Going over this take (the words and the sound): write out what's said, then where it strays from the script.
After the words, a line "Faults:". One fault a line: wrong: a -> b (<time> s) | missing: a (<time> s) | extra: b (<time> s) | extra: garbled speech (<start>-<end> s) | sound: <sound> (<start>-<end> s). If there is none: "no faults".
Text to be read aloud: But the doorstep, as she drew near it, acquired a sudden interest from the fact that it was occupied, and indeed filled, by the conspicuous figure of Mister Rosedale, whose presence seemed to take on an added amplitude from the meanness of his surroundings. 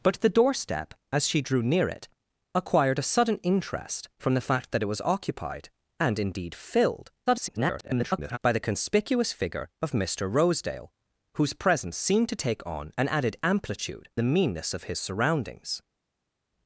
But the doorstep, as she drew near it, acquired a sudden interest from the fact that it was occupied, and indeed filled, [garbled] by the conspicuous figure of Mister Rosedale, whose presence seemed to take on an added amplitude the meanness of his surroundings.
Faults:
extra: garbled speech (7.3-8.4 s)
missing: from (14.1 s)